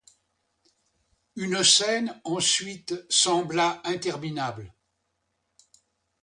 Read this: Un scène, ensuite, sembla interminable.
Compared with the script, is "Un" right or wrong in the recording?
wrong